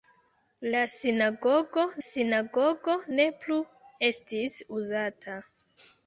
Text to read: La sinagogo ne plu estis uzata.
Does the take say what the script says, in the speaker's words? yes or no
no